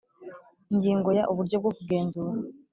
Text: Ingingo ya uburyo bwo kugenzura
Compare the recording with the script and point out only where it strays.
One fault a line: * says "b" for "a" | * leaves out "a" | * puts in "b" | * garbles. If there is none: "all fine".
all fine